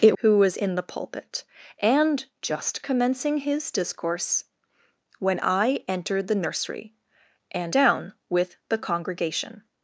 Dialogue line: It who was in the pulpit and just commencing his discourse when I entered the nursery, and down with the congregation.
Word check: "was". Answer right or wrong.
right